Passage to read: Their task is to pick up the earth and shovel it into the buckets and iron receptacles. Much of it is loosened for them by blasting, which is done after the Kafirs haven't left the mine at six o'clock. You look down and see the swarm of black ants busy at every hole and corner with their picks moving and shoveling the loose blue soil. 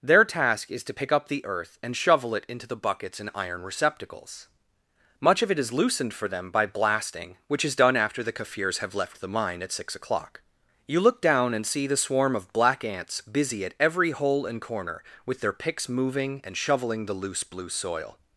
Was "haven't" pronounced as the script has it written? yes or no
no